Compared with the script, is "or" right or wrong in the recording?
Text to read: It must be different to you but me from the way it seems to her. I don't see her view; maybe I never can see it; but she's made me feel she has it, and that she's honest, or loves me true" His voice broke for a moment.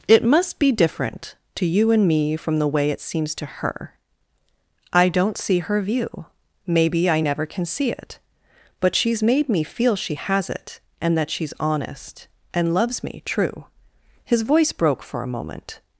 wrong